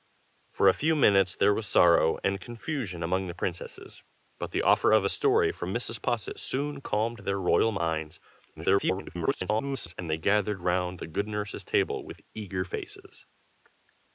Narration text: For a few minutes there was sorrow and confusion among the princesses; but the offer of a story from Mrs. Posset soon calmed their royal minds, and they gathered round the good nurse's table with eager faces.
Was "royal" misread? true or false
false